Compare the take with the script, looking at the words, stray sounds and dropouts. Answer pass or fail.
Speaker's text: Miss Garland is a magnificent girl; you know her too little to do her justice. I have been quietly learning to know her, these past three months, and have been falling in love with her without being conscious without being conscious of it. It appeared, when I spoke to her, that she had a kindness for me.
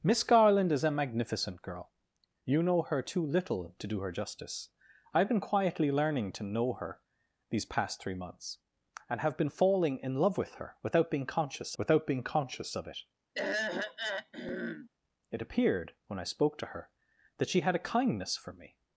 fail